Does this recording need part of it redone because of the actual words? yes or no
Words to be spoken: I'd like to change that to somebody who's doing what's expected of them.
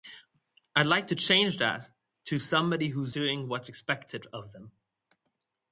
no